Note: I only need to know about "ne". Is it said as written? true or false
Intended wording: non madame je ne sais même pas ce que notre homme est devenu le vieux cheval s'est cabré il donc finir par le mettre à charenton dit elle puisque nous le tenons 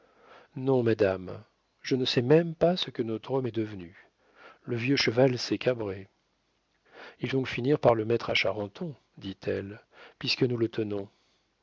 true